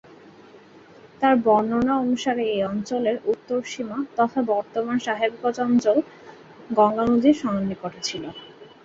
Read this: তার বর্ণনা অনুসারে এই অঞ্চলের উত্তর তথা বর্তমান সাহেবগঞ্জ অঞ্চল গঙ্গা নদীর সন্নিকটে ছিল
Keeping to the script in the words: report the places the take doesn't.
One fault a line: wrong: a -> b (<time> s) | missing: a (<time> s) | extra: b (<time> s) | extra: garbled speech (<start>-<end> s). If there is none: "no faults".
extra: সীমা (3.6 s)